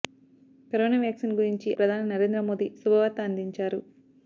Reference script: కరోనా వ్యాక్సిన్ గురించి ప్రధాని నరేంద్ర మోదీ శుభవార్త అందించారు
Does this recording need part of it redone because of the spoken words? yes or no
no